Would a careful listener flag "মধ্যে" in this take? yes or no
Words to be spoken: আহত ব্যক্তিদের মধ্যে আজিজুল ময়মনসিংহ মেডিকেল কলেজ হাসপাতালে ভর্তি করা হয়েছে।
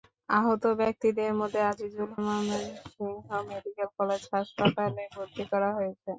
no